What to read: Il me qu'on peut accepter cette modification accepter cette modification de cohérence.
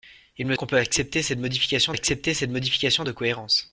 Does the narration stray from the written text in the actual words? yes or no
no